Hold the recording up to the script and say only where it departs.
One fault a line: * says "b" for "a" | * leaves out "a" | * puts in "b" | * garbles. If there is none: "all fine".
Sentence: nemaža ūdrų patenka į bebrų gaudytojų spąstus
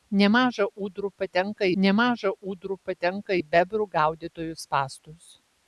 * puts in "nemaža ūdrų patenka"